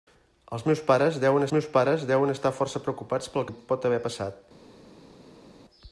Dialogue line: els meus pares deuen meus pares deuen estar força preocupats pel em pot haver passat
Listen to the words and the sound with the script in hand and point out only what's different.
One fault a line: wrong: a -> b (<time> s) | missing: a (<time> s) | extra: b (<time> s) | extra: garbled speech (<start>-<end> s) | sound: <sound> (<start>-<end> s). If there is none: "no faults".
no faults